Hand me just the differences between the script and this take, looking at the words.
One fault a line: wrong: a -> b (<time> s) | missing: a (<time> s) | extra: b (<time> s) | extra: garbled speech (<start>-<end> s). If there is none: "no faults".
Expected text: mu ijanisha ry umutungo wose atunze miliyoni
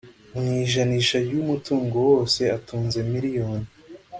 no faults